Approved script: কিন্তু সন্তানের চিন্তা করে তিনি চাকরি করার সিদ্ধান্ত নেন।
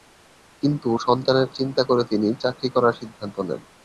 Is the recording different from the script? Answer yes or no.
no